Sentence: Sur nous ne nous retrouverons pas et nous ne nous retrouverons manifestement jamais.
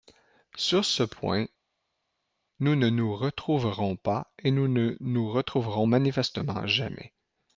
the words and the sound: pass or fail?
fail